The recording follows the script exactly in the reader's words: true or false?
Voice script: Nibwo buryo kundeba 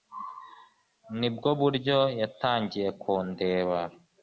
false